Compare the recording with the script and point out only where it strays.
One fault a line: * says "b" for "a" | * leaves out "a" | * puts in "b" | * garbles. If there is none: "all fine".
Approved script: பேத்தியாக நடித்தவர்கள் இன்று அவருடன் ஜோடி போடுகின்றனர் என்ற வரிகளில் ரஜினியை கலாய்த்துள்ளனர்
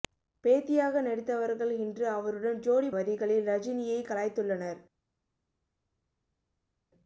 * leaves out "போடுகின்றனர் என்ற"